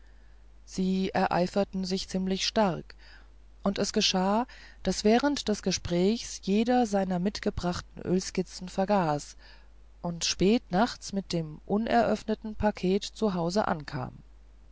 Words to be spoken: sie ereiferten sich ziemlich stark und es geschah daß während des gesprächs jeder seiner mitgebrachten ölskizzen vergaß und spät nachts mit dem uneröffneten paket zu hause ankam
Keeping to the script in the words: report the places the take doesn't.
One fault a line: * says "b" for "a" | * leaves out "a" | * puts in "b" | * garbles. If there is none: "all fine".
all fine